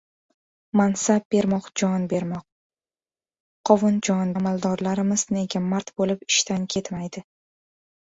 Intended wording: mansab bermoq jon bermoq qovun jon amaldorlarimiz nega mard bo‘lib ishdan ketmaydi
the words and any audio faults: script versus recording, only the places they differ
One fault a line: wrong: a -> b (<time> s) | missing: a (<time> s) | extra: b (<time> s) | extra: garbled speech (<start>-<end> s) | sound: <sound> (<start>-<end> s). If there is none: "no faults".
no faults